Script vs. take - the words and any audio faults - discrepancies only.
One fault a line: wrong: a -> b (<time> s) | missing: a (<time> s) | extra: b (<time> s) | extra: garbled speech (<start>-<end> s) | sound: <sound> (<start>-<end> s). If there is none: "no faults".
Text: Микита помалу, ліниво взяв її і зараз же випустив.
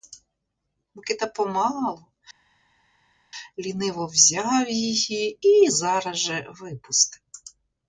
no faults